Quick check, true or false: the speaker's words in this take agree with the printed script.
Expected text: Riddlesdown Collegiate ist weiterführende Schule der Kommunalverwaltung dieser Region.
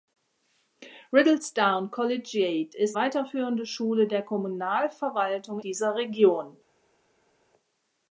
true